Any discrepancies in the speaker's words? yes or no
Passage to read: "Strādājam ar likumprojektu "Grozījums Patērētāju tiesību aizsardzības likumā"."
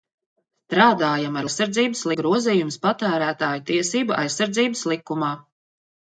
yes